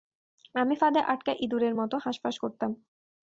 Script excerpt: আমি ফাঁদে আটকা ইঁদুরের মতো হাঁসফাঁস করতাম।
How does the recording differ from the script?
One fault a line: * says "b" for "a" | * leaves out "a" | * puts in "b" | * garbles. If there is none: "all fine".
all fine